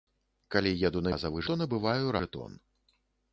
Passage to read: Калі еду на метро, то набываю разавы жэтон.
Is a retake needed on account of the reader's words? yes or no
yes